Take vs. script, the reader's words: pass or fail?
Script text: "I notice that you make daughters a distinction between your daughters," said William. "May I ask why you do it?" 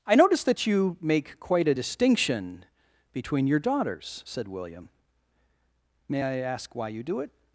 fail